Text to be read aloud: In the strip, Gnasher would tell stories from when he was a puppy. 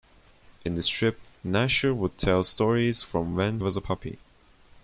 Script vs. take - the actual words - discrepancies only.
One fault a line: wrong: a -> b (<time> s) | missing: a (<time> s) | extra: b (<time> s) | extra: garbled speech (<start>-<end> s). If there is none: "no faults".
missing: he (3.6 s)